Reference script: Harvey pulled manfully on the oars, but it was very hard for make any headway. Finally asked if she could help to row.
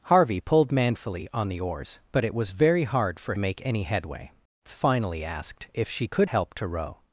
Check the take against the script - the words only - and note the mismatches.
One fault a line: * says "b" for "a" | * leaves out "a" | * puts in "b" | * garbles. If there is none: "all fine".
all fine